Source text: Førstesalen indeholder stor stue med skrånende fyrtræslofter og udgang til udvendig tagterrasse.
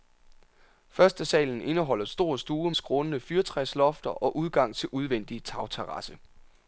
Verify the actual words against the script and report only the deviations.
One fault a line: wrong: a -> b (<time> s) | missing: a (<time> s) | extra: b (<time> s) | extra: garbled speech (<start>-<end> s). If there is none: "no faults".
missing: med (2.7 s)